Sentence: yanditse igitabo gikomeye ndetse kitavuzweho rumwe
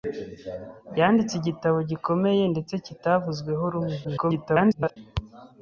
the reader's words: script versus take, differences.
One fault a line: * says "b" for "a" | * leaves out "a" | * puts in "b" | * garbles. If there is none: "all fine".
* garbles